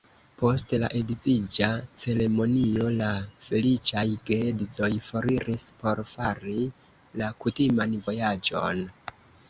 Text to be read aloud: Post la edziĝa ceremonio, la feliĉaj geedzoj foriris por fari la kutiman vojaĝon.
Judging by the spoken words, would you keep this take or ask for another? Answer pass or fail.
pass